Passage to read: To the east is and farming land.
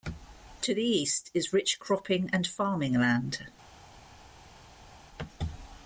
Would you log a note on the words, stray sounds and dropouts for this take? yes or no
yes